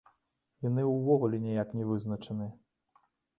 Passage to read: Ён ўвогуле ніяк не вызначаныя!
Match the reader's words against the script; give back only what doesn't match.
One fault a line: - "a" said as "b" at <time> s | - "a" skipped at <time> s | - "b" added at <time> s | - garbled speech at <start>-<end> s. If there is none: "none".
- "Ён" said as "Яны" at 0.7 s